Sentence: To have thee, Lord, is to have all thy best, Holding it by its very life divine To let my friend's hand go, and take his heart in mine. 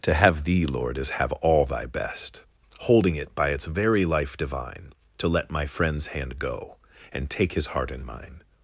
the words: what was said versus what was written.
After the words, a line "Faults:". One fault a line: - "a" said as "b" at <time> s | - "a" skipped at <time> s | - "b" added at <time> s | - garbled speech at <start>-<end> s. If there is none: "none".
To have thee, Lord, is have all thy best, Holding it by its very life divine To let my friend's hand go, and take his heart in mine.
Faults:
- "to" skipped at 1.1 s